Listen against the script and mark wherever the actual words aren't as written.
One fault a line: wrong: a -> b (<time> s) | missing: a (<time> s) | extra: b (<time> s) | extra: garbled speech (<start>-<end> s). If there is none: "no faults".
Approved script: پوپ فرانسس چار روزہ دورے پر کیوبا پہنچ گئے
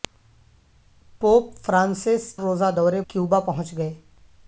missing: چار (2.2 s)
missing: پر (3.0 s)